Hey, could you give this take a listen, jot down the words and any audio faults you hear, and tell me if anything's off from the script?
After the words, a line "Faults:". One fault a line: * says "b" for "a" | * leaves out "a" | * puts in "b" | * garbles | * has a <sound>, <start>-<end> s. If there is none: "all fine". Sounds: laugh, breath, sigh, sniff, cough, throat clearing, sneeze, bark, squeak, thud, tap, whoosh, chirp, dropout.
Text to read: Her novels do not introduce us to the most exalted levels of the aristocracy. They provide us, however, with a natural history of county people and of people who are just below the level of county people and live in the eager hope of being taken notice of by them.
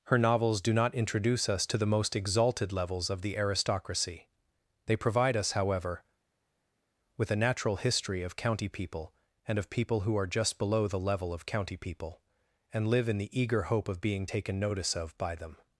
Her novels do not introduce us to the most exalted levels of the aristocracy. They provide us, however, with a natural history of county people and of people who are just below the level of county people and live in the eager hope of being taken notice of by them.
Faults:
all fine